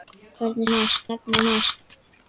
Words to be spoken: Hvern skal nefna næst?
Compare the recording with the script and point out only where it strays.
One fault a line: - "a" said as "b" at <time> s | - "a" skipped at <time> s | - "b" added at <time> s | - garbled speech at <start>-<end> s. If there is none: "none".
- "skal" said as "næst" at 0.7 s